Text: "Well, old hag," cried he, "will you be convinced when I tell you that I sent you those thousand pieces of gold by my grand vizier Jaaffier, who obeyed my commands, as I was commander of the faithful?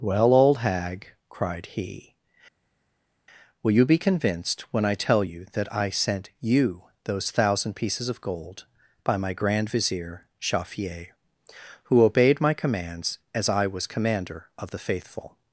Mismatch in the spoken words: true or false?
false